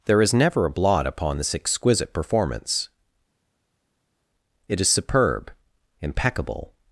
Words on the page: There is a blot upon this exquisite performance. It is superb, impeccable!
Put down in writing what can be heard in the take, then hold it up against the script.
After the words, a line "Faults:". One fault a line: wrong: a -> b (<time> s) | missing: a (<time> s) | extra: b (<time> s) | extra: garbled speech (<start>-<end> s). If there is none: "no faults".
There is never a blot upon this exquisite performance. It is superb, impeccable!
Faults:
extra: never (0.3 s)